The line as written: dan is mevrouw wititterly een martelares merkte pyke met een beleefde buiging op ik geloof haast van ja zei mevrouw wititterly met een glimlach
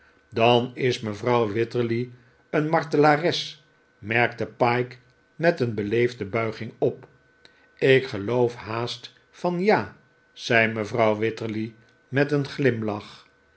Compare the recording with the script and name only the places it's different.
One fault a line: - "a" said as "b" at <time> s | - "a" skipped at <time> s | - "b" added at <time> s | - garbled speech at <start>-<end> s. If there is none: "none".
none